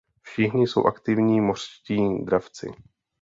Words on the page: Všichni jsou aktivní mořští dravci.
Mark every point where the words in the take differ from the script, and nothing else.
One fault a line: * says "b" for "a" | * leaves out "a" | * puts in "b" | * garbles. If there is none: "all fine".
all fine